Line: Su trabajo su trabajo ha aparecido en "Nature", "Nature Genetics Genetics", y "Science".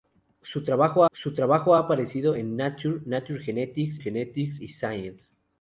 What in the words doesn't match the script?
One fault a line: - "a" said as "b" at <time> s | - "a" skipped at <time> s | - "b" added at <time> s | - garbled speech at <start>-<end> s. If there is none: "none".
none